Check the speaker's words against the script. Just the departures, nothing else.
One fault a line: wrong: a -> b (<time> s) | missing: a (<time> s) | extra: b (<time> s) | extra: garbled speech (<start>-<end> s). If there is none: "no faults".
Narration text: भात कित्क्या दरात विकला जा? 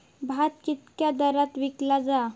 no faults